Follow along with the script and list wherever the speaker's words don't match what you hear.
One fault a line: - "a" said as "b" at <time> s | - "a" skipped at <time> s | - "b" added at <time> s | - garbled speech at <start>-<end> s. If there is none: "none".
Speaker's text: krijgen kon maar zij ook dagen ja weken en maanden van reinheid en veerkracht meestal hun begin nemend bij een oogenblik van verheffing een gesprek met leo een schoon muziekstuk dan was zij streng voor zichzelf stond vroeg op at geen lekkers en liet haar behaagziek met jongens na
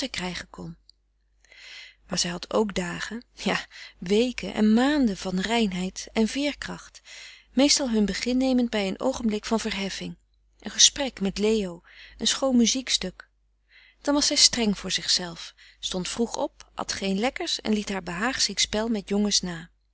- "had" added at 2.3 s
- "spel" added at 18.6 s